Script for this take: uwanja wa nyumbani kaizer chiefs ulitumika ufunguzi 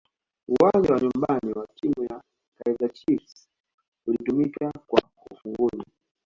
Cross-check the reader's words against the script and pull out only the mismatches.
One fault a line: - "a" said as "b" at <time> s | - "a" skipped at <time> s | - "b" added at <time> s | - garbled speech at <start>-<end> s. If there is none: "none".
- "wa timu ya" added at 1.5 s
- "kwa" added at 4.9 s